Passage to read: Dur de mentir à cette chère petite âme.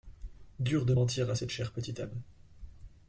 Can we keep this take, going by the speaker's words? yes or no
yes